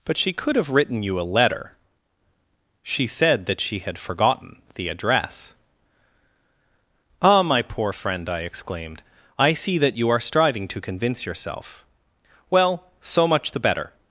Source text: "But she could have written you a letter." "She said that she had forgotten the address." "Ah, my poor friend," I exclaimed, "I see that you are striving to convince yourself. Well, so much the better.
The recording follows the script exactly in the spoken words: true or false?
true